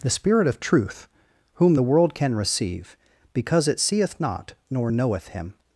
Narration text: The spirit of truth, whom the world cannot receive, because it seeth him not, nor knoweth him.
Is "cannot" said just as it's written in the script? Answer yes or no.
no